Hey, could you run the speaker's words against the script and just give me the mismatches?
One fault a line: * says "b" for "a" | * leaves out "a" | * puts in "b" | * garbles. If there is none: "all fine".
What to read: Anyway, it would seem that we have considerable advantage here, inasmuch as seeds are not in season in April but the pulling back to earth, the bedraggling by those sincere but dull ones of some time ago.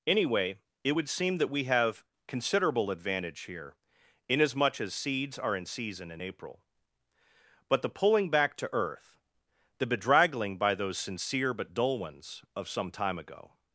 * leaves out "not"